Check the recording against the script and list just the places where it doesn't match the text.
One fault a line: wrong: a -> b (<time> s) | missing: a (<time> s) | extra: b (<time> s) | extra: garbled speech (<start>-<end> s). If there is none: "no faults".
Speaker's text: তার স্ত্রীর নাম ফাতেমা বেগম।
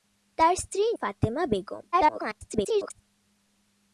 missing: নাম (0.9 s)
extra: garbled speech (1.9-3.0 s)